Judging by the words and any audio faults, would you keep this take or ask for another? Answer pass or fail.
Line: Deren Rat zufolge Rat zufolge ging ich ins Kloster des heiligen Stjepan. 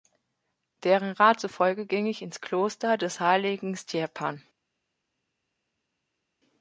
fail